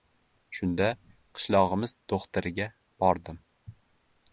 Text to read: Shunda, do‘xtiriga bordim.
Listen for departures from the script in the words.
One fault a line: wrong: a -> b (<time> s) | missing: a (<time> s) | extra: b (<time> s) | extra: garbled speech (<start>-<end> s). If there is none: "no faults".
extra: qishlog‘imiz (1.4 s)